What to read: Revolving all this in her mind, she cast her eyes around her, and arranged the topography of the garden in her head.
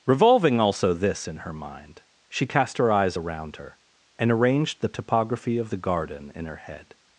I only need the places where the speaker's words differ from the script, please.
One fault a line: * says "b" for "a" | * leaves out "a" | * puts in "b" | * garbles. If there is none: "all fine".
* says "also" for "all"